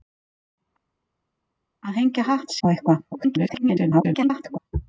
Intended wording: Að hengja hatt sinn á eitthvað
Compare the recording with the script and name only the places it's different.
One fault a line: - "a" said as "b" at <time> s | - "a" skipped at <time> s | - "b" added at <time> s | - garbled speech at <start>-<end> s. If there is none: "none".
- "sinn" skipped at 2.6 s
- garbled speech at 3.1-4.6 s